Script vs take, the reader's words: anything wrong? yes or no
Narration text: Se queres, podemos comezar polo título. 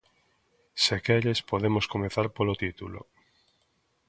no